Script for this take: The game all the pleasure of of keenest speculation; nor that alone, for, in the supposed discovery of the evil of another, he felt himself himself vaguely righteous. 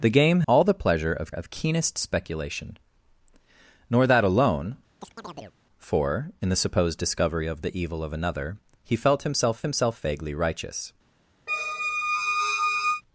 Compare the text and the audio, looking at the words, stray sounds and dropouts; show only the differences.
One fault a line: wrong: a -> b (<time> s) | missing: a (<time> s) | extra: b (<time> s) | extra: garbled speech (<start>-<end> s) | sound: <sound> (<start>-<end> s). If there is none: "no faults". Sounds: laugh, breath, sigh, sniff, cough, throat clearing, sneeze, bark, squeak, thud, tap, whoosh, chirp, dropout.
sound: chirp (5.0-5.6 s)
sound: squeak (11.5-13.0 s)